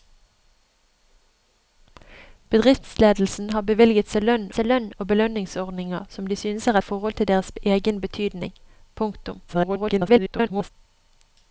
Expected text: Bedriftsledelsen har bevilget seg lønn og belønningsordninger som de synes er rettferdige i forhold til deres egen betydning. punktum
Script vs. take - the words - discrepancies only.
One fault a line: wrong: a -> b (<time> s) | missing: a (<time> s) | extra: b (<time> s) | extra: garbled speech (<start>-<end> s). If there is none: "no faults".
extra: seg lønn (4.6 s)
missing: rettferdige (6.8 s)
extra: garbled speech (9.5-10.7 s)